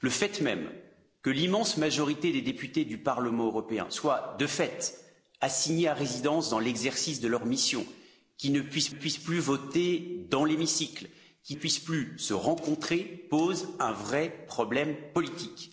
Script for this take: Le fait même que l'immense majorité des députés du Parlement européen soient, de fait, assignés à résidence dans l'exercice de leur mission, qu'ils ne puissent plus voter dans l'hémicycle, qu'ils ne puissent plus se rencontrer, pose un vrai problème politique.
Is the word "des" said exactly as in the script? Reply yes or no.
yes